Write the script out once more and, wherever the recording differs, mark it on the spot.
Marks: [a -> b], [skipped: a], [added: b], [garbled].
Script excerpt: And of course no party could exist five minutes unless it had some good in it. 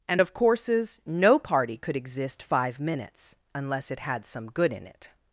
And of [course -> courses] no party could exist five minutes unless it had some good in it.